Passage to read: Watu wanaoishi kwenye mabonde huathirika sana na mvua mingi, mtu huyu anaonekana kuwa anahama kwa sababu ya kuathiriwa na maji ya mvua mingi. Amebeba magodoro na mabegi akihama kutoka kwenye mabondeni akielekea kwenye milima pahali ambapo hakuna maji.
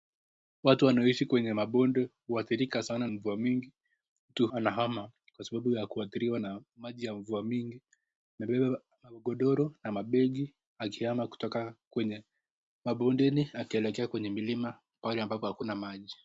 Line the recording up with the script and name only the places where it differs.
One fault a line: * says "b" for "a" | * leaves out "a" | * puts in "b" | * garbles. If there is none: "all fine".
* leaves out "na"
* leaves out "huyu anaonekana kuwa"